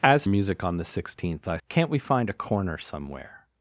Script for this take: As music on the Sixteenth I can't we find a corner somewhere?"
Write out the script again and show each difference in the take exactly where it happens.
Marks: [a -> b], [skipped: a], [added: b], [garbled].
As music on the Sixteenth I can't we find a corner somewhere?"